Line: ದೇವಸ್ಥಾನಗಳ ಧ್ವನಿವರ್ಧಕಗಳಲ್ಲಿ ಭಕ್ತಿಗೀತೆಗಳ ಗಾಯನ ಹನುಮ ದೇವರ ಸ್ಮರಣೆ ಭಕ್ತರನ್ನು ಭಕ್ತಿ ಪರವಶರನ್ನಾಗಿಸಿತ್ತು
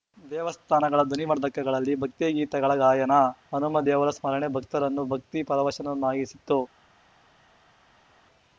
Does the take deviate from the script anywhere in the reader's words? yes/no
no